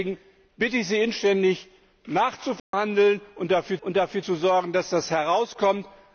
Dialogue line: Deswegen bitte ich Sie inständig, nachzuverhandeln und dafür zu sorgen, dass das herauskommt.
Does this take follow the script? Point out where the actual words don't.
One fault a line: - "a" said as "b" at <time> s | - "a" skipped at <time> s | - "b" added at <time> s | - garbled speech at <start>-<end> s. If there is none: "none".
- "und dafür" added at 3.8 s